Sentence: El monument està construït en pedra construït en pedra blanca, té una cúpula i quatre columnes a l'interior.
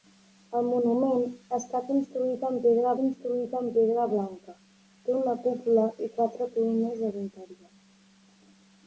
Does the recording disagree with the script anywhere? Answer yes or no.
no